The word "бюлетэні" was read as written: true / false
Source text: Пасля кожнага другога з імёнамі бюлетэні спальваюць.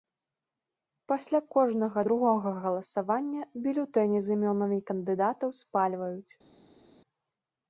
false